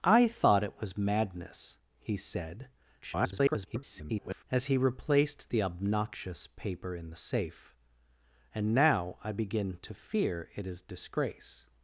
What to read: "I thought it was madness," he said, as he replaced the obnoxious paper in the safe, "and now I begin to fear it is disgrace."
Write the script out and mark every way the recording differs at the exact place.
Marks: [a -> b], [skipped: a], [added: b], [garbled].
"I thought it was madness," he said, [garbled] as he replaced the obnoxious paper in the safe, "and now I begin to fear it is disgrace."